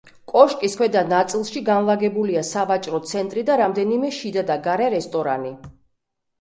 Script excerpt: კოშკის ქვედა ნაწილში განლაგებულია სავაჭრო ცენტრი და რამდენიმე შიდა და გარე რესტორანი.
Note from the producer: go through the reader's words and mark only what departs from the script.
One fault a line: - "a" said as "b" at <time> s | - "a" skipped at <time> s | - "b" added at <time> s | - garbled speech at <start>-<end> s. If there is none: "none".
none